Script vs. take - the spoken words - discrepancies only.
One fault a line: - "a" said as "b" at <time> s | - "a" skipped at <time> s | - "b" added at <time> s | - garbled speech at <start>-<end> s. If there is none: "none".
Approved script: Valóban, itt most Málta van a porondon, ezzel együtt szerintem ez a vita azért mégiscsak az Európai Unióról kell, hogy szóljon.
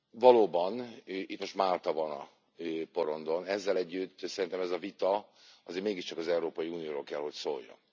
none